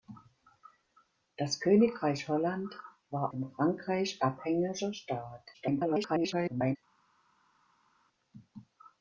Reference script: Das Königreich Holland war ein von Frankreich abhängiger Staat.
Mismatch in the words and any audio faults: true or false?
true